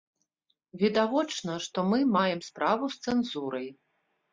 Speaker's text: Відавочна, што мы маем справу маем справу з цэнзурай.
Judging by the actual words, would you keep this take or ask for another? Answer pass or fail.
fail